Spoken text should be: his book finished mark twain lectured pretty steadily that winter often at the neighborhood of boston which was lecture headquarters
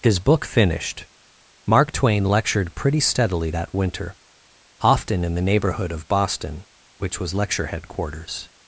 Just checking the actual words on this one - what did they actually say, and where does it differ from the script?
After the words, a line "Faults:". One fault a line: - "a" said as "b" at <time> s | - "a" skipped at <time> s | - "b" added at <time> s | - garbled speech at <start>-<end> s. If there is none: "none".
his book finished mark twain lectured pretty steadily that winter often in the neighborhood of boston which was lecture headquarters
Faults:
- "at" said as "in" at 5.2 s